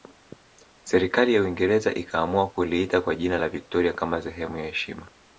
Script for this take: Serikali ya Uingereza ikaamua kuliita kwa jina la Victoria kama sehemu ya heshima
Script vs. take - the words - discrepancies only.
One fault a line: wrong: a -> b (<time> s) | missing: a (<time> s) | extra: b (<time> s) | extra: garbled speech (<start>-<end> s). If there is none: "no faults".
no faults